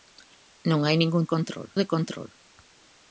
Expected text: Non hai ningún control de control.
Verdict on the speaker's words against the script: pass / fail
pass